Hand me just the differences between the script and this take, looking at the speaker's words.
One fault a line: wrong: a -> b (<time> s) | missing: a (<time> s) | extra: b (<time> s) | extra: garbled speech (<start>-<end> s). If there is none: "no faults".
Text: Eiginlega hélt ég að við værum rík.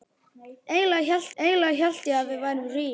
extra: eiginlega hélt (1.4 s)